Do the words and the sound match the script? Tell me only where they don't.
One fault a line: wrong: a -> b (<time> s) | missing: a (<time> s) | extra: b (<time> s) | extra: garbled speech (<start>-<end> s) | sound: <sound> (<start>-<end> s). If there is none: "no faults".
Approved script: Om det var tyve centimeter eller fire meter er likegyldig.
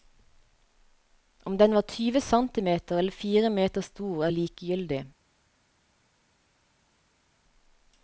wrong: det -> den (1.6 s)
extra: stor (3.8 s)